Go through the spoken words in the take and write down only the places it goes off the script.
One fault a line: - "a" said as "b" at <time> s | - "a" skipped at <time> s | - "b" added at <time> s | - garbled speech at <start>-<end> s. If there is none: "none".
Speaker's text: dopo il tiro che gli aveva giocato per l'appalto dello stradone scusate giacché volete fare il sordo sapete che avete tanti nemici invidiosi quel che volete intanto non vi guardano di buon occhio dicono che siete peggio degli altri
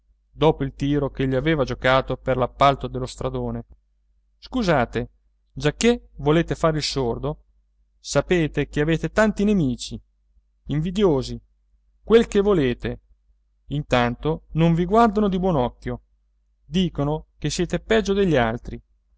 none